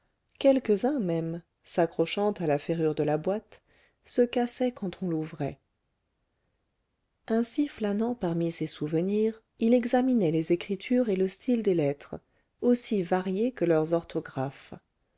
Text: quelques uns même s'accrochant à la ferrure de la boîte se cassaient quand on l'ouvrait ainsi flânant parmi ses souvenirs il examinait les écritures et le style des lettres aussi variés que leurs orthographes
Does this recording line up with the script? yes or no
yes